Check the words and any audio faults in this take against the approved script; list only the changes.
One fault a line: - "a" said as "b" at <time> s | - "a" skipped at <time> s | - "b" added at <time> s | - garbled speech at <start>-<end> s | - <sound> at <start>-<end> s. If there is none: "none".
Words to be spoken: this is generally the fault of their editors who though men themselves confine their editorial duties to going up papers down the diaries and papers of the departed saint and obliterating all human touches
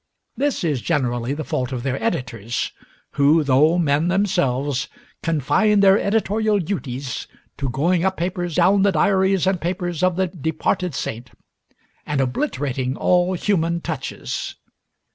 none